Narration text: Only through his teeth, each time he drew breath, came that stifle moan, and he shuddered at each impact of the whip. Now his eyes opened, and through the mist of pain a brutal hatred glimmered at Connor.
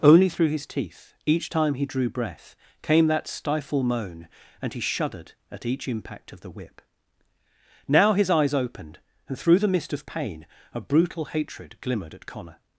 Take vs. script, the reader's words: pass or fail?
pass